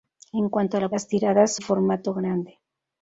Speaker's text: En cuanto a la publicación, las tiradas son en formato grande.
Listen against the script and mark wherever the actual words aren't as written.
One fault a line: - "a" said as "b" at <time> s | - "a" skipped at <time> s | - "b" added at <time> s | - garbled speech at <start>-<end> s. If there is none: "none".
- "publicación" skipped at 0.9 s
- "son en" skipped at 1.6 s